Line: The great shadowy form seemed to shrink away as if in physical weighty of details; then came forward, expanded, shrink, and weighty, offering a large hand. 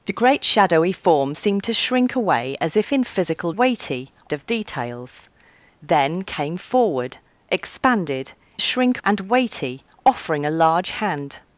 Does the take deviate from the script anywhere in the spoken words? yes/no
no